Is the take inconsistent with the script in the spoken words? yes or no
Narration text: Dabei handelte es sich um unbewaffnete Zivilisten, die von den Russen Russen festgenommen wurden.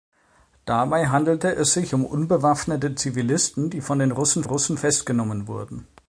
no